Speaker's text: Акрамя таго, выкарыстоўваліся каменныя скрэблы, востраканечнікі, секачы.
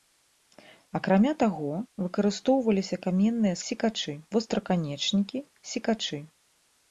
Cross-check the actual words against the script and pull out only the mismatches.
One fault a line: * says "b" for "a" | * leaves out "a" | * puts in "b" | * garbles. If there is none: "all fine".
* says "секачы" for "скрэблы"